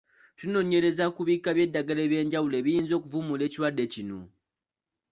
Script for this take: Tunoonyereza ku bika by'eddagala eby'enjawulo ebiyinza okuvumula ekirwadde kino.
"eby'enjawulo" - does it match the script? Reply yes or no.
yes